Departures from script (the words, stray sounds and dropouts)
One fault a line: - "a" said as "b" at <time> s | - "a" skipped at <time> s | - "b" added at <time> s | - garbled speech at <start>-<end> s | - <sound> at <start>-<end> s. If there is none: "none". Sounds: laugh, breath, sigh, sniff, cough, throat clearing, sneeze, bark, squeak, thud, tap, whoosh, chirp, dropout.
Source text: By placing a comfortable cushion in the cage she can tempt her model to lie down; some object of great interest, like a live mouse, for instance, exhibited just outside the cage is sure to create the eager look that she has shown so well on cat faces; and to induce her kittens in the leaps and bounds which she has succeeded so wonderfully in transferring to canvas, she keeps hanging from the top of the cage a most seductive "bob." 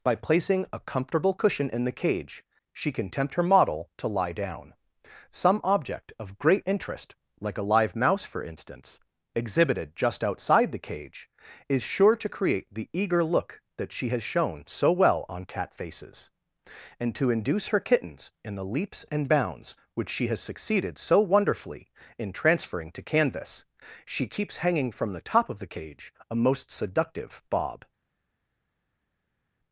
none